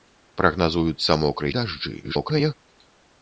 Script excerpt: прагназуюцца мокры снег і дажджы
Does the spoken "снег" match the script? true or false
false